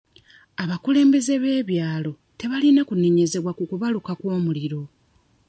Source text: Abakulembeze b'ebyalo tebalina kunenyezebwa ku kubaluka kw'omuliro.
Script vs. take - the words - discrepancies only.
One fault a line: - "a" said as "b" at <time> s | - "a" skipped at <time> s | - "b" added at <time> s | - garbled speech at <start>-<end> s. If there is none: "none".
none